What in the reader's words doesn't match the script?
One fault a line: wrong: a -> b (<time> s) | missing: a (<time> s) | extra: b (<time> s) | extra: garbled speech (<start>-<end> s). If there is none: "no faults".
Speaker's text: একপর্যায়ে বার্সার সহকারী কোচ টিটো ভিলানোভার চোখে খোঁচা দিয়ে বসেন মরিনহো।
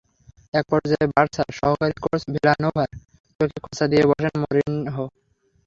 missing: টিটো (2.2 s)